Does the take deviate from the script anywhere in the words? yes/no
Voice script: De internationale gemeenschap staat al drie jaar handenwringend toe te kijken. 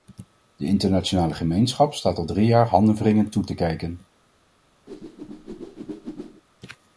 no